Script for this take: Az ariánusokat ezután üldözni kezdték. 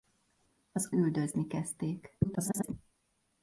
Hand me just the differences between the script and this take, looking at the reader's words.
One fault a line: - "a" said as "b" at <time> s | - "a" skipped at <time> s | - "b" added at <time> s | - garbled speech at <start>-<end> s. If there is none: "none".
- "ariánusokat ezután" skipped at 0.9 s
- garbled speech at 2.2-2.7 s